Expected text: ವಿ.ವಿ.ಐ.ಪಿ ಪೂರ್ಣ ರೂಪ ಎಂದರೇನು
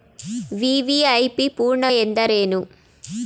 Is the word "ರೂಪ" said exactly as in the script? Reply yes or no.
no